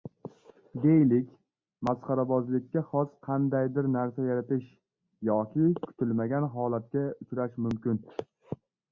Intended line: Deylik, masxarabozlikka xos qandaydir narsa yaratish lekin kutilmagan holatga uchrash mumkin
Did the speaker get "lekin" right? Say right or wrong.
wrong